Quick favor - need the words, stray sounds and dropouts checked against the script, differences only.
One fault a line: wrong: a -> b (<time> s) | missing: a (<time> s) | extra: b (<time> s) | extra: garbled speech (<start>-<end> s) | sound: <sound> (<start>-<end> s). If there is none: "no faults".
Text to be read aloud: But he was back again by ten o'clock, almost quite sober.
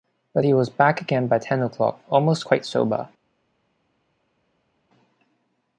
no faults